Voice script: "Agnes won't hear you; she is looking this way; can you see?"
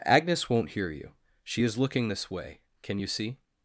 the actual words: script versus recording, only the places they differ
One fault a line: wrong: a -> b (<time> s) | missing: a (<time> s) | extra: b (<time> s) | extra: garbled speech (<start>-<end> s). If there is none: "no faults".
no faults